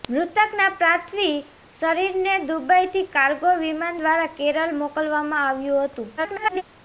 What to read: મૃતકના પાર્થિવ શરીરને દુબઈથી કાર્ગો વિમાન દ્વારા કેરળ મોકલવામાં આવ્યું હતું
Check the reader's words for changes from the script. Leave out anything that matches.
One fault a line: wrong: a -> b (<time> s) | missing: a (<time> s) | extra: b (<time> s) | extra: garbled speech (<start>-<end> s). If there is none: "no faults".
extra: garbled speech (6.2-6.6 s)